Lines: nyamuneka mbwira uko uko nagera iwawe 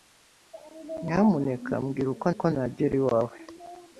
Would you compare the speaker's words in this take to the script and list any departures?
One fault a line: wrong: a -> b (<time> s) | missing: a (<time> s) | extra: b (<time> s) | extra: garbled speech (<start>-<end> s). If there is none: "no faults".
no faults